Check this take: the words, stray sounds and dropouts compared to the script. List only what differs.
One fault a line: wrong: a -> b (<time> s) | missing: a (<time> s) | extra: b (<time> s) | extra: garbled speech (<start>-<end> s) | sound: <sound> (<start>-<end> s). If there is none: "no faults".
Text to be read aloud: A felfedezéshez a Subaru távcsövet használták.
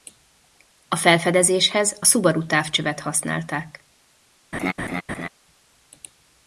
sound: laugh (4.5-5.3 s)